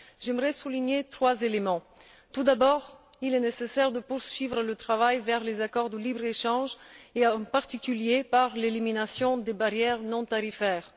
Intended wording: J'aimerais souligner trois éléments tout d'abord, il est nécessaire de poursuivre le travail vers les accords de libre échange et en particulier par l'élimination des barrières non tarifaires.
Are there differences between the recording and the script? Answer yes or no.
no